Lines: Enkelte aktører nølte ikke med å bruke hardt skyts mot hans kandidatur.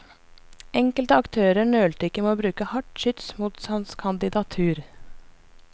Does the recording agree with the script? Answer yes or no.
yes